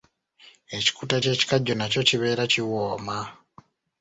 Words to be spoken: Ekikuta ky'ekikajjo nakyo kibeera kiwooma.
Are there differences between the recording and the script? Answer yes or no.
no